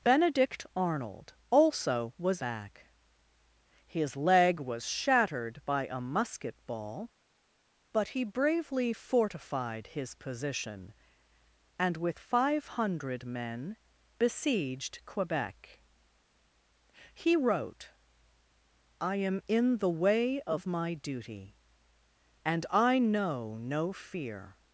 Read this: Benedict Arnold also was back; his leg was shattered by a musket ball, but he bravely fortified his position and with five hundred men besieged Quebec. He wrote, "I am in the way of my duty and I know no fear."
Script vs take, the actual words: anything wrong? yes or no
no